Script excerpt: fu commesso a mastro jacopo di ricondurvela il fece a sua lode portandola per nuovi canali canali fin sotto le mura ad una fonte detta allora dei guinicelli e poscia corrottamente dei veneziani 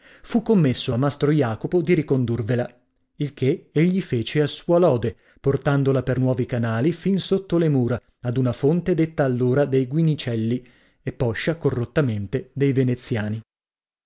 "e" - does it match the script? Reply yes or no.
yes